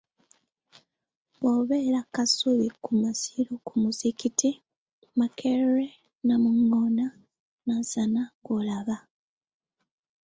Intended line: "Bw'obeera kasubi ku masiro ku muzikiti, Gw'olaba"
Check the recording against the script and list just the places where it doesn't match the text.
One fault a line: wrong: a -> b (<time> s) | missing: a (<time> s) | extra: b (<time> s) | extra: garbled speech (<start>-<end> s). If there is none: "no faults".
extra: Makerere Namungoona Nansana (5.2 s)